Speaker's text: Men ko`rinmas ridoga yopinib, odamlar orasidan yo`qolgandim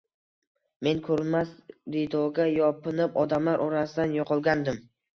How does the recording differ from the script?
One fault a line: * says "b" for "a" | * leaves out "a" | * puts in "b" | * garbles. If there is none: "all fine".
all fine